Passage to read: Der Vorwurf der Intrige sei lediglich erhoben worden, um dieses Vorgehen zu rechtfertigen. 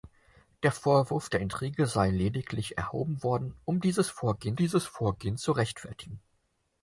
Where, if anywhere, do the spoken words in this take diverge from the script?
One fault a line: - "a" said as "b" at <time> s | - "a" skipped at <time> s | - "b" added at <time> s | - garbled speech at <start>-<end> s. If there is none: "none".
- "dieses Vorgehen" added at 4.6 s